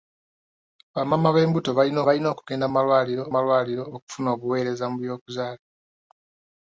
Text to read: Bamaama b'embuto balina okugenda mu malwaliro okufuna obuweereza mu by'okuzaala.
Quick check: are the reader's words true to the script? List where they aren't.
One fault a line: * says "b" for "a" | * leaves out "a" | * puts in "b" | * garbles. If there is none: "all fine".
* puts in "balina"
* puts in "malwaliro"